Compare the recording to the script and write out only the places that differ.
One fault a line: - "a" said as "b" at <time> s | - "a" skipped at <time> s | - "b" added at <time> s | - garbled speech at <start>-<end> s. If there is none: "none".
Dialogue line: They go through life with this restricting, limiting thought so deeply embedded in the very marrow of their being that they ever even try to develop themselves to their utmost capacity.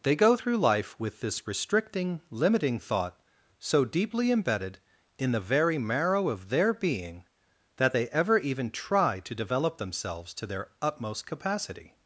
none